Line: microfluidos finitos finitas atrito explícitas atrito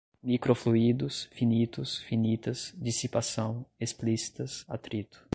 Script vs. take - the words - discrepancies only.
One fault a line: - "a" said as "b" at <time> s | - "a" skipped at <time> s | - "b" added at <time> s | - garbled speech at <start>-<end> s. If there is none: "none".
- "atrito" said as "dissipação" at 2.8 s